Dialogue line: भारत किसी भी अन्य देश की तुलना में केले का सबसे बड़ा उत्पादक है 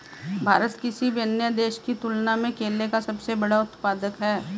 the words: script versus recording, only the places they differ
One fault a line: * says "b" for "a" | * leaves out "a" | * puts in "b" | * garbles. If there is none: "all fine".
all fine